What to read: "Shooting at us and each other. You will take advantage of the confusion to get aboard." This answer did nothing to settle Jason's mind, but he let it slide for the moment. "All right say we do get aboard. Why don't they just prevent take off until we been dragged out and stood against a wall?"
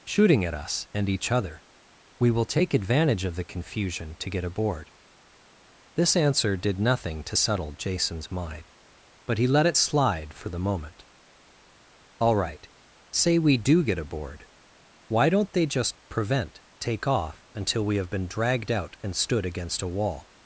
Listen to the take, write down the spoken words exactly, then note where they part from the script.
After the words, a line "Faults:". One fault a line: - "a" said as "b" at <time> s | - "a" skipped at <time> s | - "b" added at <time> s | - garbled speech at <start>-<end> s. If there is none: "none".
"Shooting at us and each other. We will take advantage of the confusion to get aboard." This answer did nothing to settle Jason's mind, but he let it slide for the moment. "All right say we do get aboard. Why don't they just prevent take off until we have been dragged out and stood against a wall?"
Faults:
- "You" said as "We" at 2.2 s
- "have" added at 17.9 s